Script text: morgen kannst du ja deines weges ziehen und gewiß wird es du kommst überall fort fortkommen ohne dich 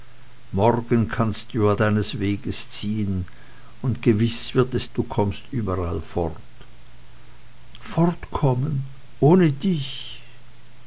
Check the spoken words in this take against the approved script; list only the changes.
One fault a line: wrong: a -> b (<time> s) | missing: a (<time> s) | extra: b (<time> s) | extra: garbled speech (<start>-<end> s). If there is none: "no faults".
no faults